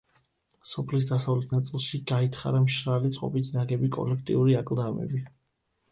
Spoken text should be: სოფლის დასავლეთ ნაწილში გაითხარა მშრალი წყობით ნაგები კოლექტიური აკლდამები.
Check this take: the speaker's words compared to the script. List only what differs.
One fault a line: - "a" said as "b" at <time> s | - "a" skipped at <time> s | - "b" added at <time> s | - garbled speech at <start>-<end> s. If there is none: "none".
none